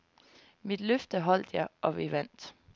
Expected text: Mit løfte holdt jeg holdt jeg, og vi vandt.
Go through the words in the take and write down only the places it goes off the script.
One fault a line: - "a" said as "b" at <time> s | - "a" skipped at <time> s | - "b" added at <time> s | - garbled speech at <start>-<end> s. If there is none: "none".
- "holdt jeg" skipped at 1.7 s